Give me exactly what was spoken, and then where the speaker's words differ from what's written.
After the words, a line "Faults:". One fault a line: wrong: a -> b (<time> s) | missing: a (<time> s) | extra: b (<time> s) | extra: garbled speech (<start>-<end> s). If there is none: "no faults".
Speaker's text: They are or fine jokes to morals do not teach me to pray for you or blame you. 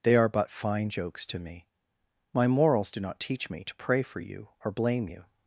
They are but fine jokes to me. My morals do not teach me to pray for you or blame you.
Faults:
wrong: or -> but (0.3 s)
extra: me My (1.4 s)